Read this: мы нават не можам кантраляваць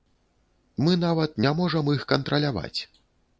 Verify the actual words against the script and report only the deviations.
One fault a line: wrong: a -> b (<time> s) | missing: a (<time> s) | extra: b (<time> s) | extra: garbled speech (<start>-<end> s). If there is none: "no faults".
extra: іх (2.0 s)